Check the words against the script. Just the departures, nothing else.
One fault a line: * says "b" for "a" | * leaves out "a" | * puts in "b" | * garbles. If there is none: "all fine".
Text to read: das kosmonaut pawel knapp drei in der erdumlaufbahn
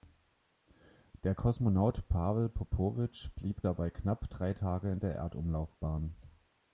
* says "der" for "das"
* puts in "popowitsch blieb dabei"
* puts in "tage"